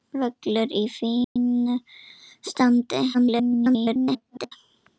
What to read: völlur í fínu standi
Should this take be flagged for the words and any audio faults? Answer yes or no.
yes